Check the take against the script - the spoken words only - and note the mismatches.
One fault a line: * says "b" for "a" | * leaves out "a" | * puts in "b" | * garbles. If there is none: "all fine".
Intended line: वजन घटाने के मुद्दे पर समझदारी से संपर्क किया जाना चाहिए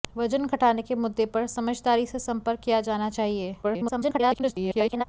* garbles